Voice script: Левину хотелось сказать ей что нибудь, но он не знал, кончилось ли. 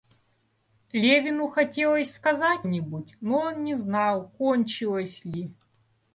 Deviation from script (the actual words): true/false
true